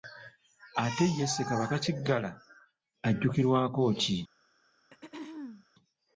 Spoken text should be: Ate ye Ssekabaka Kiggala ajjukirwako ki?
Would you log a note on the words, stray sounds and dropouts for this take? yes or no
yes